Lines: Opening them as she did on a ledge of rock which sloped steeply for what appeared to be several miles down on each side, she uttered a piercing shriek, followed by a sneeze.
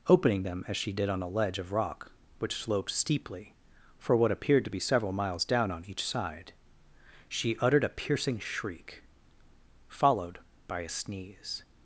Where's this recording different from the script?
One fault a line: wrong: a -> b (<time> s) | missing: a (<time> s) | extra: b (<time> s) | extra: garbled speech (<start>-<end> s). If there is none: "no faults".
no faults